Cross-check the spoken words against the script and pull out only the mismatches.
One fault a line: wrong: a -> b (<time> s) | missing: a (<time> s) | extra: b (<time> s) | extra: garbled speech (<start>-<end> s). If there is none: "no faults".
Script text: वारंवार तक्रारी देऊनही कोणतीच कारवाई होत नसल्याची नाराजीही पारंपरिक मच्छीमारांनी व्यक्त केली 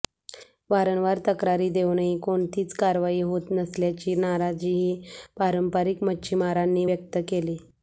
no faults